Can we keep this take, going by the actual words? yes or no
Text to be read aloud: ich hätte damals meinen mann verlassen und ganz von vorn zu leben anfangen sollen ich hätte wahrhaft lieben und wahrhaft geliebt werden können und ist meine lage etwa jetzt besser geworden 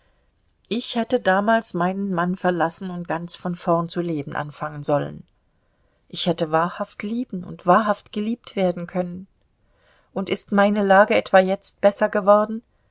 yes